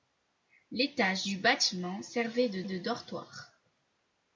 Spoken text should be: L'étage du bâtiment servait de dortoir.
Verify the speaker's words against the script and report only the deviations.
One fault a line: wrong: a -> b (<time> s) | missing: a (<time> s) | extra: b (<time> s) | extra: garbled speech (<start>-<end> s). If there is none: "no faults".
extra: de (2.7 s)